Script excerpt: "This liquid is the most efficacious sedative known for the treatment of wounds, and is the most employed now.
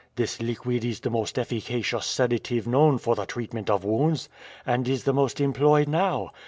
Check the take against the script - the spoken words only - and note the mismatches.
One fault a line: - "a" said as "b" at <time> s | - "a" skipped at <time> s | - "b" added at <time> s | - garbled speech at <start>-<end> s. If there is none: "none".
none